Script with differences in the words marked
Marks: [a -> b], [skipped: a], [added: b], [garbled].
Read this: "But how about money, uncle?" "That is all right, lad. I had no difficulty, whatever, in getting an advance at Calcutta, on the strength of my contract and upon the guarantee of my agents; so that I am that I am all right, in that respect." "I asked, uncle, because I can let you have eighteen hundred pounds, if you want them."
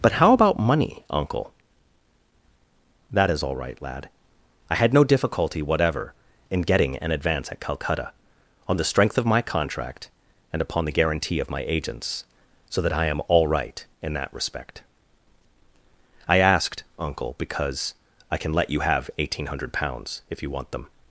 "But how about money, uncle?" "That is all right, lad. I had no difficulty, whatever, in getting an advance at Calcutta, on the strength of my contract and upon the guarantee of my agents; so that I am [skipped: that I am] all right, in that respect." "I asked, uncle, because I can let you have eighteen hundred pounds, if you want them."